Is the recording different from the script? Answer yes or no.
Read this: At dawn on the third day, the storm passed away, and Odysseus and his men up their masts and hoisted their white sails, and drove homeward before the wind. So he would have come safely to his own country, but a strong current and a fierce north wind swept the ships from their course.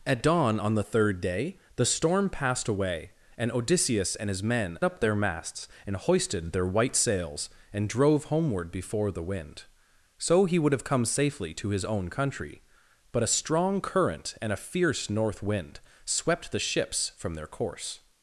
no